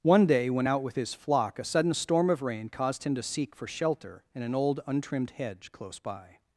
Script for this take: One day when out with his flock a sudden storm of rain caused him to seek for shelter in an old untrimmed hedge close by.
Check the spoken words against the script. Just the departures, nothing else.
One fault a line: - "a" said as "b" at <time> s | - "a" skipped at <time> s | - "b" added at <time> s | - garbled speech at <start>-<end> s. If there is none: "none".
none